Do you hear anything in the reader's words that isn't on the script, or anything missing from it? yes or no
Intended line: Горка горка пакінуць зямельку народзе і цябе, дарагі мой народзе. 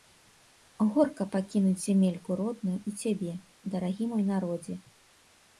yes